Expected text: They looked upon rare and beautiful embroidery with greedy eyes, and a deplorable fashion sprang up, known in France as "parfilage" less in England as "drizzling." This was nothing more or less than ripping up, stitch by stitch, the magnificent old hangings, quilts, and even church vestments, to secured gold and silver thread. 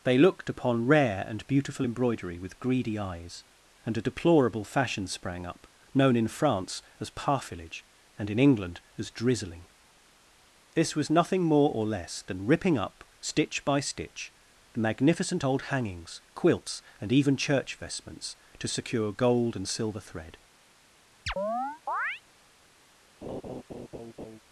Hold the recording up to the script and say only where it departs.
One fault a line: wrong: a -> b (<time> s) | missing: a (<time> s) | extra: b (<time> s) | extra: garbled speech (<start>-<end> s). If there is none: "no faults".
wrong: less -> and (8.2 s)
wrong: secured -> secure (18.7 s)